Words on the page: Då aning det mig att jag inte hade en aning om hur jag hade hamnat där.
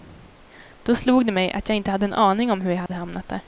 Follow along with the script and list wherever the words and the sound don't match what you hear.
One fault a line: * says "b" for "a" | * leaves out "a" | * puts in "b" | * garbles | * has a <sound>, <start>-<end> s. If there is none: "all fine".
* says "slog" for "aning"
* has a dropout, 2.9-2.9 s